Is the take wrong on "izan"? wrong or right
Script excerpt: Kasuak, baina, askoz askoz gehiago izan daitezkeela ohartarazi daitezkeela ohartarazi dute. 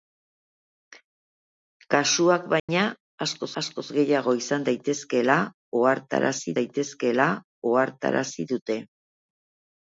right